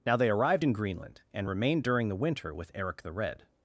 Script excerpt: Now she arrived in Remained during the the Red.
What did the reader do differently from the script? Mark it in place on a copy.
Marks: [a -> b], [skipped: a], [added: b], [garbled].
Now [she -> they] arrived in [added: Greenland and] Remained during the [added: winter with Eric] the Red.